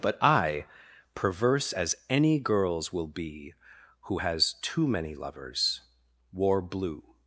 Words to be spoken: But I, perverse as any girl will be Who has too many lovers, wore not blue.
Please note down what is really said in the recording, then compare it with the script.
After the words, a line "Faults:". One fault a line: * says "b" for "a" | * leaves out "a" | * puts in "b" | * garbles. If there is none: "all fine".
But I, perverse as any girls will be Who has too many lovers, wore blue.
Faults:
* says "girls" for "girl"
* leaves out "not"